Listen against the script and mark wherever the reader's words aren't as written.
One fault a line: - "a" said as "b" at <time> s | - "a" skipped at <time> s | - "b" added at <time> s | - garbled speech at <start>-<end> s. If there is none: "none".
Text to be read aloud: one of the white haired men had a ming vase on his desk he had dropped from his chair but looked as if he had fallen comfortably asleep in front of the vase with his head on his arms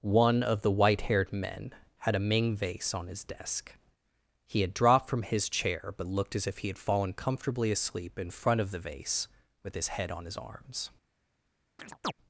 none